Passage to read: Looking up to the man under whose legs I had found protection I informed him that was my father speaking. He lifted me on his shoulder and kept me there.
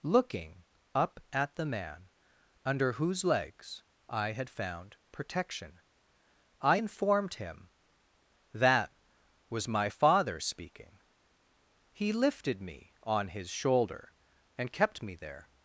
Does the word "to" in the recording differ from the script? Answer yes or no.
yes